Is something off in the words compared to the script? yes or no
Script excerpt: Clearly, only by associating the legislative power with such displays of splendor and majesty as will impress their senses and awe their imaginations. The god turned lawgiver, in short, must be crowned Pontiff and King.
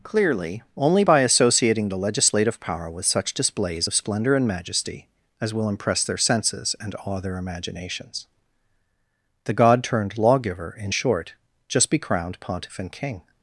yes